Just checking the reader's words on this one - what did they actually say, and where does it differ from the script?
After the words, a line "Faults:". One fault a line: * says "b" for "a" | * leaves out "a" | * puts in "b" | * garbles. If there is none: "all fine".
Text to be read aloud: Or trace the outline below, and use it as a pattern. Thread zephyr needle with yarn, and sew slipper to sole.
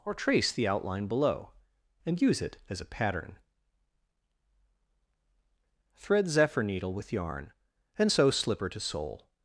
Or trace the outline below, and use it as a pattern. Thread zephyr needle with yarn, and sew slipper to sole.
Faults:
all fine